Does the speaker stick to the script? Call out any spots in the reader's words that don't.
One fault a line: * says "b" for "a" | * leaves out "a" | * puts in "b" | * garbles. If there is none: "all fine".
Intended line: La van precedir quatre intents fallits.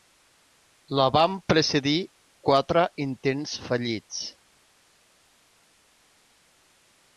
all fine